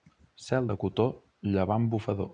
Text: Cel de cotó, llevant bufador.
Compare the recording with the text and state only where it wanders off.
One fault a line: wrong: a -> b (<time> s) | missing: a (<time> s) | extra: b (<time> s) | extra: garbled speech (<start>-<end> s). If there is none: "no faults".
no faults